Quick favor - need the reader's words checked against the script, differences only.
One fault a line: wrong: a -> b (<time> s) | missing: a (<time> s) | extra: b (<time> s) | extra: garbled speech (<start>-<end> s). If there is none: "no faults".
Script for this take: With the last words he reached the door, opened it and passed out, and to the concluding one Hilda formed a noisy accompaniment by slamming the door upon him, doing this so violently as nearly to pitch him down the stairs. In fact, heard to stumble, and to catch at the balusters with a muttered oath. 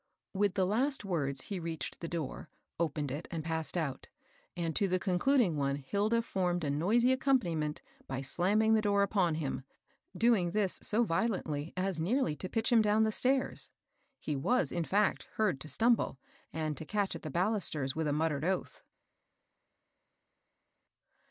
extra: He was (14.2 s)